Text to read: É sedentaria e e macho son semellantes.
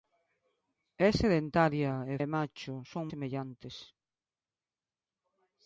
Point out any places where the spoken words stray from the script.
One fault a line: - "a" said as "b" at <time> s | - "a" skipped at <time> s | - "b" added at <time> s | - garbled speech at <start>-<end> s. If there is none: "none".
none